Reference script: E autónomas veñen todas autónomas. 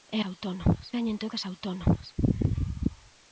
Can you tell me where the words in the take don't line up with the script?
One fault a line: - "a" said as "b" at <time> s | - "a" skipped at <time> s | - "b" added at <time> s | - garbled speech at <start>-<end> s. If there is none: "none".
none